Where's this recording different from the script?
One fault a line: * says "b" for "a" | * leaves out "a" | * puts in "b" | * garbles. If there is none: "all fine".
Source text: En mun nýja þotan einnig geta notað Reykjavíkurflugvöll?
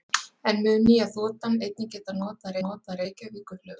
* puts in "notað"